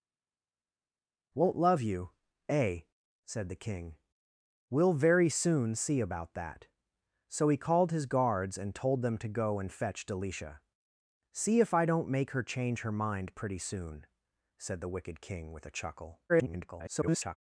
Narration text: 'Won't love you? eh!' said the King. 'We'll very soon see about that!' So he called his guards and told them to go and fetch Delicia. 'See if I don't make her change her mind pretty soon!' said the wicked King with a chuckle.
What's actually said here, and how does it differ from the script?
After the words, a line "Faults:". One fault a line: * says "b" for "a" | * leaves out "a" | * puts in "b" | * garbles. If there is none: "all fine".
'Won't love you? eh!' said the King. 'We'll very soon see about that!' So he called his guards and told them to go and fetch Delicia. 'See if I don't make her change her mind pretty soon!' said the wicked King with a chuckle. [garbled]
Faults:
* garbles